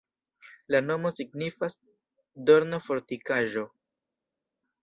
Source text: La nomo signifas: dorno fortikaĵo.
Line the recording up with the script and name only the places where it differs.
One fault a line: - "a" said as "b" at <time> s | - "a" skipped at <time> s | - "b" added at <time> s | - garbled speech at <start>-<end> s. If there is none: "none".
none